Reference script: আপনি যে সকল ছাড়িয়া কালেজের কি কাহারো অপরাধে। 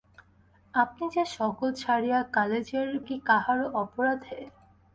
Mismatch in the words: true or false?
false